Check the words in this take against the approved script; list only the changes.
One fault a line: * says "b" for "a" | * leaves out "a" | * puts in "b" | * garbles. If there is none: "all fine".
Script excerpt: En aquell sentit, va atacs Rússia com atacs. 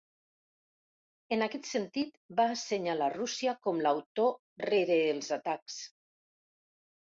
* says "aquest" for "aquell"
* says "assenyalar" for "atacs"
* puts in "l'autor rere els"